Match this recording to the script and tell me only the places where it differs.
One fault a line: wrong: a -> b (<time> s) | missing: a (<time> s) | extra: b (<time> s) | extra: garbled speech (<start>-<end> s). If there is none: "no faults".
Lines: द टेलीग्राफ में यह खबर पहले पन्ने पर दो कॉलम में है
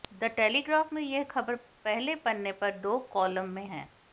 no faults